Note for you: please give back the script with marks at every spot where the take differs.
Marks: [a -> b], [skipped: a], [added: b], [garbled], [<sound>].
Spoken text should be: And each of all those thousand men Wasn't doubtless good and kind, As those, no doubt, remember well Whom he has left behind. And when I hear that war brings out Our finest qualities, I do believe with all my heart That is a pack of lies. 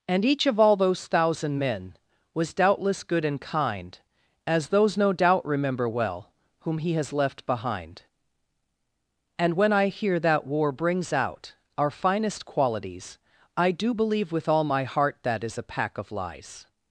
And each of all those thousand men [Wasn't -> Was] doubtless good and kind, As those, no doubt, remember well Whom he has left behind. And when I hear that war brings out Our finest qualities, I do believe with all my heart That is a pack of lies.